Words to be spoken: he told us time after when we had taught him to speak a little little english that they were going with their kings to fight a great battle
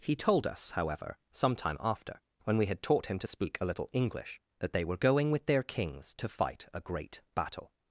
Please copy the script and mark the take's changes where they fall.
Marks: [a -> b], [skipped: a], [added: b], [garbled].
he told us [added: however some] time after when we had taught him to speak a little [skipped: little] english that they were going with their kings to fight a great battle